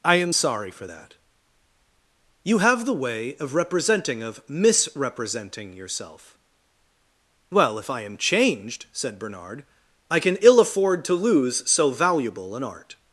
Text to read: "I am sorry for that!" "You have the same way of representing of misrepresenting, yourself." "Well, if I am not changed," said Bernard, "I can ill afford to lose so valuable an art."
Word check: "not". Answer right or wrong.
wrong